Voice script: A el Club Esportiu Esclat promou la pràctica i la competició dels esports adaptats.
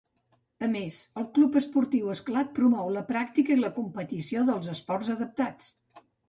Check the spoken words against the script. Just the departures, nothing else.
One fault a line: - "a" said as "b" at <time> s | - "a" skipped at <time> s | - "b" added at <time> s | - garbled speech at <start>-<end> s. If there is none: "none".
- "més" added at 0.8 s